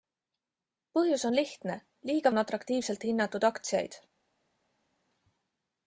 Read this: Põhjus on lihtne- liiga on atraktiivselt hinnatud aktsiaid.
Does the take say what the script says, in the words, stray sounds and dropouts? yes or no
yes